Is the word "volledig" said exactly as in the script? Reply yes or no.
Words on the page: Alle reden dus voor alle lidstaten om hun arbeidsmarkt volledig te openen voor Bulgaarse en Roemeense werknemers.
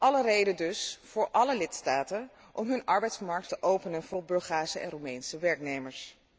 no